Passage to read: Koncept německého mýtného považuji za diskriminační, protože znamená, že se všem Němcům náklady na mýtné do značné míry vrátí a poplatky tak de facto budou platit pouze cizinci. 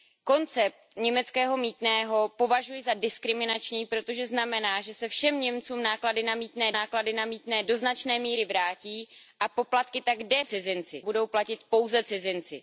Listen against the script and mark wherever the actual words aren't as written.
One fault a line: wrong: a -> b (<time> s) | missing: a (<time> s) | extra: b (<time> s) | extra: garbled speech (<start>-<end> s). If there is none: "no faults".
extra: náklady na mýtné (6.7 s)
wrong: facto -> cizinci (10.5 s)